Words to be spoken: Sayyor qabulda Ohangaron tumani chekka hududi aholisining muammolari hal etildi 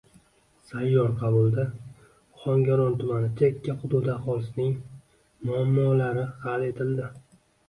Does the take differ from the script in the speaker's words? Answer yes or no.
no